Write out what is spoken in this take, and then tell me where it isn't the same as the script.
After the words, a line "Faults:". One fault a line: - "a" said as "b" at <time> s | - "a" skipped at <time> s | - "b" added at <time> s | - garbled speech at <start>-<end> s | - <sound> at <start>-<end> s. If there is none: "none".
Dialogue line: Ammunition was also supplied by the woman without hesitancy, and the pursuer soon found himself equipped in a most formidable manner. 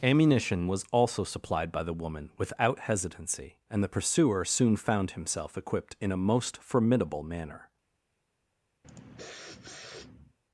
Ammunition was also supplied by the woman without hesitancy, and the pursuer soon found himself equipped in a most formidable manner.
Faults:
- sniff at 8.8-10.4 s